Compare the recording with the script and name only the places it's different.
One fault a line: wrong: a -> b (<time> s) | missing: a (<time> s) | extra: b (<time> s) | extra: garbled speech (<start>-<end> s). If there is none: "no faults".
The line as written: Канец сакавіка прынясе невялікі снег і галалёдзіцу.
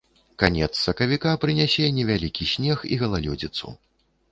no faults